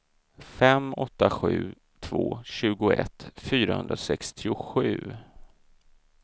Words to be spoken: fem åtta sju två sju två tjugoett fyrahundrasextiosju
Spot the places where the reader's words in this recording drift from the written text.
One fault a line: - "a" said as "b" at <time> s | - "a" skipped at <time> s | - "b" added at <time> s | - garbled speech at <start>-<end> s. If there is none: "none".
- "sju två" skipped at 2.4 s